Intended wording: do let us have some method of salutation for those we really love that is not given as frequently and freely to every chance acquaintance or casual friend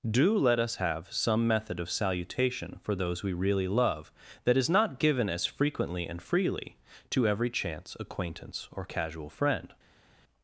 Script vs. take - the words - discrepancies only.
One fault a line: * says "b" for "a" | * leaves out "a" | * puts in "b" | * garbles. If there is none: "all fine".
all fine